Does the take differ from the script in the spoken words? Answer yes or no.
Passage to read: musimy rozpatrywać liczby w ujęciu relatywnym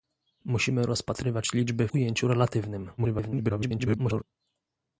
yes